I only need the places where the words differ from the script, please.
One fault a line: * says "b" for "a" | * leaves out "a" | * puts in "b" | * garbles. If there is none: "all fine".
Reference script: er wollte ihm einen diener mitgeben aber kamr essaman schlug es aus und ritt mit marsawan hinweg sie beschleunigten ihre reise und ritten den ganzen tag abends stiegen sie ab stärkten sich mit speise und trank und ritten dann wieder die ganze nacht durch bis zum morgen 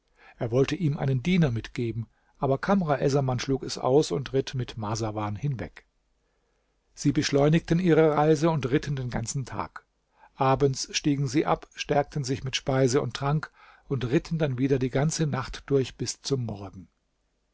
all fine